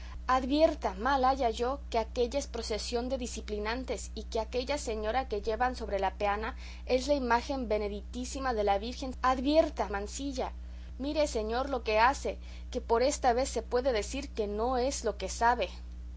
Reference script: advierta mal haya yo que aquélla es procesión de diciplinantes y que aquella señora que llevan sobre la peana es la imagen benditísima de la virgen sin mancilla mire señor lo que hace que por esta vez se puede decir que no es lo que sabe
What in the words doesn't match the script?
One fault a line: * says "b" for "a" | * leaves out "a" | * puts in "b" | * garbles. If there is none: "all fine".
* says "advierta" for "sin"